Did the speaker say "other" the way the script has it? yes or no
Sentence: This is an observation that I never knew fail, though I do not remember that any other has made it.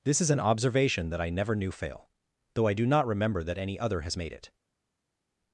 yes